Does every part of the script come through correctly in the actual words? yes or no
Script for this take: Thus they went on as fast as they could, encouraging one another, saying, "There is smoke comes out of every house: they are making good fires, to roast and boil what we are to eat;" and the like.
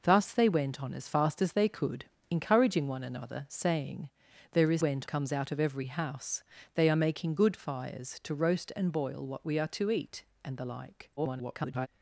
no